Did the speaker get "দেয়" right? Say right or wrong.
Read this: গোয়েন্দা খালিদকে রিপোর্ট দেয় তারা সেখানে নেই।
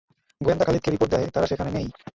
right